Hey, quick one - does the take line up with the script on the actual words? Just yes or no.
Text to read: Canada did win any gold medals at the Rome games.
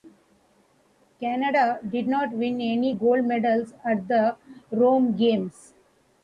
no